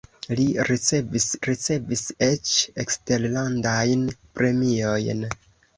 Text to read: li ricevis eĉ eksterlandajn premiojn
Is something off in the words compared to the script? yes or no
yes